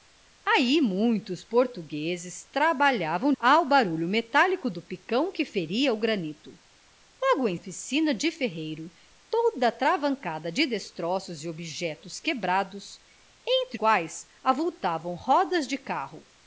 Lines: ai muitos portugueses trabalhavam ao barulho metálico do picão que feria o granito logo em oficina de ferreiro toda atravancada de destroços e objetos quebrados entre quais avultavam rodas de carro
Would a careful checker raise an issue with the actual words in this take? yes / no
no